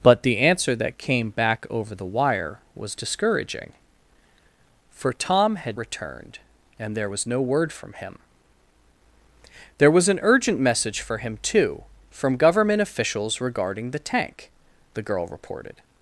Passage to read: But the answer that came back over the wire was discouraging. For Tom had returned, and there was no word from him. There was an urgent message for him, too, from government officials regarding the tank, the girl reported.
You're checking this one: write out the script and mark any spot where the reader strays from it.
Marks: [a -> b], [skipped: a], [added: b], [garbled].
But the answer that came back over the wire was discouraging. For Tom had returned, and there was no word from him. There was an urgent message for him, too, from government officials regarding the tank, the girl reported.